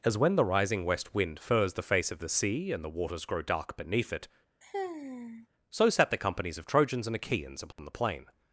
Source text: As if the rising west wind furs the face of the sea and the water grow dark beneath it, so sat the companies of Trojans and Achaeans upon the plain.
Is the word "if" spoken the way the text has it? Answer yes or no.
no